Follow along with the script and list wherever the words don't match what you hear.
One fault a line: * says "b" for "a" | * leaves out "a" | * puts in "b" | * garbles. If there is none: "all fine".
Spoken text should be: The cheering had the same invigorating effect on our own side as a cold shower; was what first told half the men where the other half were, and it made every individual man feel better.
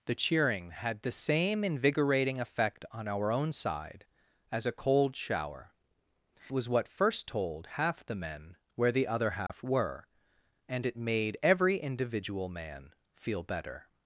all fine